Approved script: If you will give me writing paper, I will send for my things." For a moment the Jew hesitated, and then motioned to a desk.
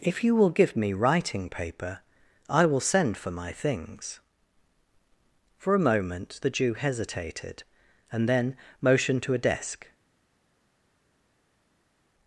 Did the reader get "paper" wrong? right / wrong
right